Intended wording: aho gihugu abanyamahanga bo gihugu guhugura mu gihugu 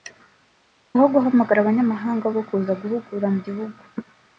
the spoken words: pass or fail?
fail